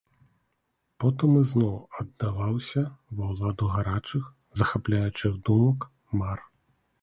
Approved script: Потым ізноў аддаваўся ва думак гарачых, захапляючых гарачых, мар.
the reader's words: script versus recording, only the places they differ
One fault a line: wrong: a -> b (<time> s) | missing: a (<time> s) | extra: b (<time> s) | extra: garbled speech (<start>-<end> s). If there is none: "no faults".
wrong: думак -> ўладу (3.4 s)
wrong: гарачых -> думак (5.5 s)